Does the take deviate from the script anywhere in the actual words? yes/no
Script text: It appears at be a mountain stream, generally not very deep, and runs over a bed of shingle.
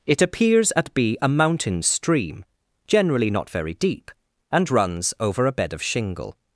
no